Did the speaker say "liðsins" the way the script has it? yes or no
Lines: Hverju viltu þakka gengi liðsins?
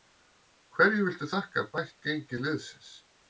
yes